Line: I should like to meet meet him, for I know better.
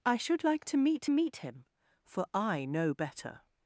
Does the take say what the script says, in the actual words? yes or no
yes